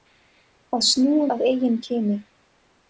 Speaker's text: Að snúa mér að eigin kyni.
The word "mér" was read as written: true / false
false